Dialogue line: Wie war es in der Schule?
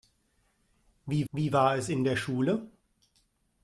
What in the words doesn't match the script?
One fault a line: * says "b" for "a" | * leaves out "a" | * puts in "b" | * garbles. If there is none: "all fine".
* puts in "wie"